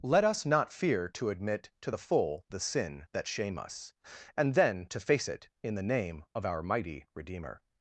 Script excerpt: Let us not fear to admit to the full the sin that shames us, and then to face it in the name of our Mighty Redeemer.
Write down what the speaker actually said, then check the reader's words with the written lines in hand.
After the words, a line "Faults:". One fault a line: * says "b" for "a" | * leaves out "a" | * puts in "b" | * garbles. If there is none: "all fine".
Let us not fear to admit to the full the sin that shame us, and then to face it in the name of our Mighty Redeemer.
Faults:
* says "shame" for "shames"